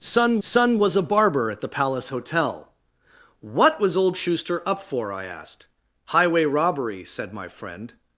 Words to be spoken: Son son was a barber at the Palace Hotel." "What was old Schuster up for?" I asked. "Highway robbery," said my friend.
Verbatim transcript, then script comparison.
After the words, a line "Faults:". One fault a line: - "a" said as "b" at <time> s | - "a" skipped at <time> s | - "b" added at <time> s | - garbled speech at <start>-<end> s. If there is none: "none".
Son son was a barber at the Palace Hotel." "What was old Schuster up for?" I asked. "Highway robbery," said my friend.
Faults:
none